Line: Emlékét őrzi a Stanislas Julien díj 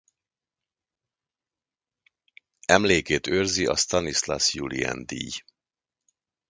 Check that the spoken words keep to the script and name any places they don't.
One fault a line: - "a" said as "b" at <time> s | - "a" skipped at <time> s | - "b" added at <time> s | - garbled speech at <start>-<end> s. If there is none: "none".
none